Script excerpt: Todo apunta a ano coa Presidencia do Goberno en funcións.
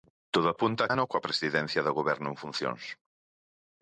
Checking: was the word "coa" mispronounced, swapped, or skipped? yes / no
no